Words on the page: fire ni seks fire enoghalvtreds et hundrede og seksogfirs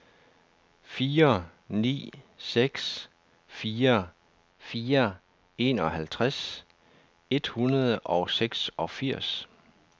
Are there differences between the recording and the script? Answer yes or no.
yes